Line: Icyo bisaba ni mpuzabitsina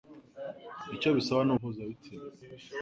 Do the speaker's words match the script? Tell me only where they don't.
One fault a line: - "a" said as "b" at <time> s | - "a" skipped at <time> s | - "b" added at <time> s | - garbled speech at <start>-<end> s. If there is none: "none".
none